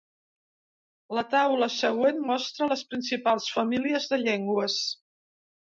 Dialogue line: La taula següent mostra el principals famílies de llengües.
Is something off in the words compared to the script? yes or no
yes